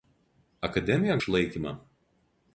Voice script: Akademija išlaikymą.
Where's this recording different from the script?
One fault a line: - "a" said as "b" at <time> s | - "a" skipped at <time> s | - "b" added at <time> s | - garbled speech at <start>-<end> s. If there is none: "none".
none